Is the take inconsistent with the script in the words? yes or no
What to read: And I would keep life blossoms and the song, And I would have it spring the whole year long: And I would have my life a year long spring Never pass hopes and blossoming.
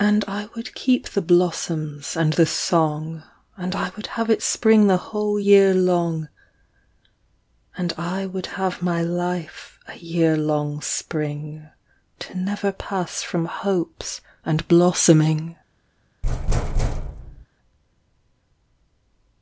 yes